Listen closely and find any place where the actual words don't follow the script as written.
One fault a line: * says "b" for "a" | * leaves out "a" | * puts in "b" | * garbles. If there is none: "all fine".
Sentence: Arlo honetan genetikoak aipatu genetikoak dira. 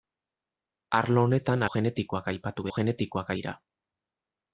all fine